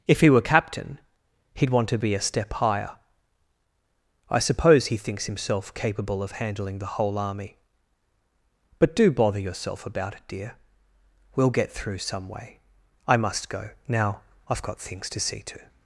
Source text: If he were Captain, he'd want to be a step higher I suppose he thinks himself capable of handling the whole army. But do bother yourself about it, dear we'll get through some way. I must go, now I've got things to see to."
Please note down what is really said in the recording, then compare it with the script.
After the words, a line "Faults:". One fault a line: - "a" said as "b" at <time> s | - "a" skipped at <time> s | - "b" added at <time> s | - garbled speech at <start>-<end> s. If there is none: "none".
If he were Captain, he'd want to be a step higher I suppose he thinks himself capable of handling the whole army. But do bother yourself about it, dear we'll get through some way. I must go, now I've got things to see to."
Faults:
none